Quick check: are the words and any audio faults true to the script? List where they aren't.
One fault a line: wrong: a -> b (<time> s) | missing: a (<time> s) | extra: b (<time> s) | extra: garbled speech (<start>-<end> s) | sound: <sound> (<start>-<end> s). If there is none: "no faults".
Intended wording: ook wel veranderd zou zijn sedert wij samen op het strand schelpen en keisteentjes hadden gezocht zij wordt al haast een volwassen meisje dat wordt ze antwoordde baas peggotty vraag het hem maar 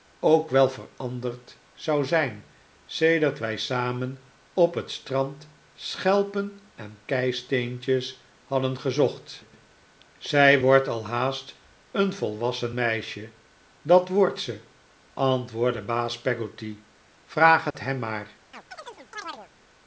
sound: dropout (17.7-17.7 s)
sound: chirp (18.5-19.5 s)